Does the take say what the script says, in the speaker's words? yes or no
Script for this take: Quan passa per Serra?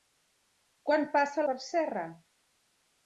yes